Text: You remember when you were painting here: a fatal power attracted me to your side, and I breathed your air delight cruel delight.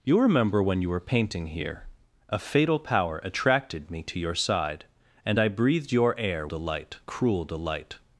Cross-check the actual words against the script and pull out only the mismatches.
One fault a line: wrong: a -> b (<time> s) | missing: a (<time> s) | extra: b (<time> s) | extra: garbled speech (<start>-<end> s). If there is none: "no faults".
no faults